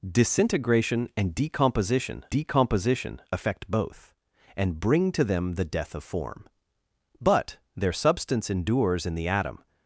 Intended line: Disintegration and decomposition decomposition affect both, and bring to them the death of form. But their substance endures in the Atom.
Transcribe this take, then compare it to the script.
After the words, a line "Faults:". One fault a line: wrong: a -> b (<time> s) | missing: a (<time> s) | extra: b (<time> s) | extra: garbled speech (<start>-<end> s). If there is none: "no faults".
Disintegration and decomposition decomposition affect both, and bring to them the death of form. But their substance endures in the Atom.
Faults:
no faults